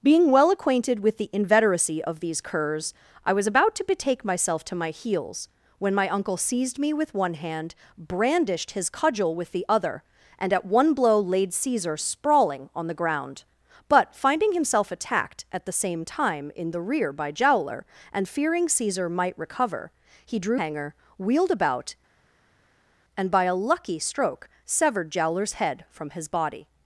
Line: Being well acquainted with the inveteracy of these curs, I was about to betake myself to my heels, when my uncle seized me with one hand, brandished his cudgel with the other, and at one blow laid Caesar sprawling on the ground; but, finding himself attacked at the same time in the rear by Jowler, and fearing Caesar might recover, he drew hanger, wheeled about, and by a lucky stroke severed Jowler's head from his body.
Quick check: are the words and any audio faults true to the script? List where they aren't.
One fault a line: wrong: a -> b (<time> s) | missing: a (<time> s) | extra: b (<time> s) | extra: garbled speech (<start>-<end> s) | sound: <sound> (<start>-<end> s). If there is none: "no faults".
no faults